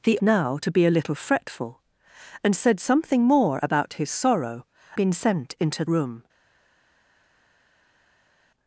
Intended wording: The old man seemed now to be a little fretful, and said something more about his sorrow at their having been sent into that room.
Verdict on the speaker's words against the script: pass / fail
fail